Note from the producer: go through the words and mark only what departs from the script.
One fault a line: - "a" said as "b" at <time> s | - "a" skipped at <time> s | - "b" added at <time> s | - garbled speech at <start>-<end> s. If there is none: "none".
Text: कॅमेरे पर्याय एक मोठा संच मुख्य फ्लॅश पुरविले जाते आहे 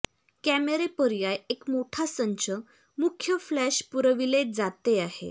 none